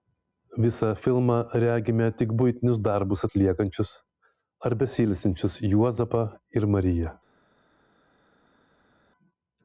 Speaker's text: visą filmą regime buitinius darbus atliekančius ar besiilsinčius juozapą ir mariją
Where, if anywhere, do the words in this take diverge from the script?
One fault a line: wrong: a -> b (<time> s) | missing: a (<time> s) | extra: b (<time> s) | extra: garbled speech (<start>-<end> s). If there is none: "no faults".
extra: tik (2.2 s)